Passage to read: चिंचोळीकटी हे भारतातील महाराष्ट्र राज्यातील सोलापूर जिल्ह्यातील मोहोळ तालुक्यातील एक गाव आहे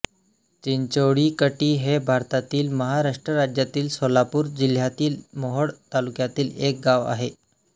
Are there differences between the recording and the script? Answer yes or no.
no